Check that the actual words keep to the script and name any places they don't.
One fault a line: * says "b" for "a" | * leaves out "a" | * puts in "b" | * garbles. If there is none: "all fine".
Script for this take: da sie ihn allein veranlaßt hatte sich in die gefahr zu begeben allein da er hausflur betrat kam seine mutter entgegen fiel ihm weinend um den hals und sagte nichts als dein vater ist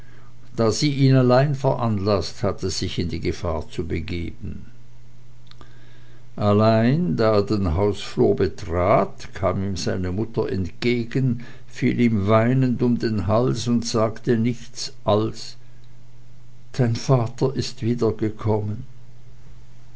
* puts in "den"
* puts in "ihm"